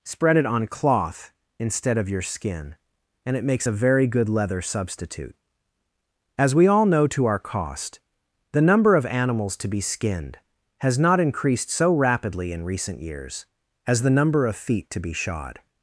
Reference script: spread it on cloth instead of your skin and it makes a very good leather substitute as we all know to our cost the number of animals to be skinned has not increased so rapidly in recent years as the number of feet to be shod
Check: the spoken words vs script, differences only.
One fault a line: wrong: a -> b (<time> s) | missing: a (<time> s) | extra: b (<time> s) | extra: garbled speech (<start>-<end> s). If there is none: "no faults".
no faults